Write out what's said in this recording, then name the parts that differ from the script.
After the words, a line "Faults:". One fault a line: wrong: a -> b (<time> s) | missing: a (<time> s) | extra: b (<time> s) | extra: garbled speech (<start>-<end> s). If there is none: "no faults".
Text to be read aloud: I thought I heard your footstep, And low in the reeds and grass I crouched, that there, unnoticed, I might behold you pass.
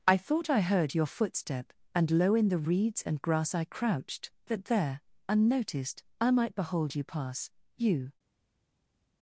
I thought I heard your footstep, And low in the reeds and grass I crouched, that there, unnoticed, I might behold you pass. You
Faults:
extra: You (7.8 s)